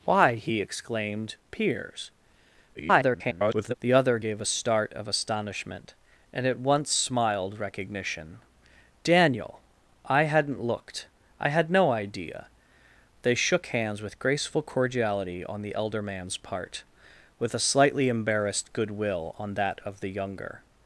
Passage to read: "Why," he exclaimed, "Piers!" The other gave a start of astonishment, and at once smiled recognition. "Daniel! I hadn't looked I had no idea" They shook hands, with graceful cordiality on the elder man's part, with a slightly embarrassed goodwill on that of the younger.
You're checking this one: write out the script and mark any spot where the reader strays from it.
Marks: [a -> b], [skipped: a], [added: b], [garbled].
"Why," he exclaimed, "Piers!" [garbled] The other gave a start of astonishment, and at once smiled recognition. "Daniel! I hadn't looked I had no idea" They shook hands, with graceful cordiality on the elder man's part, with a slightly embarrassed goodwill on that of the younger.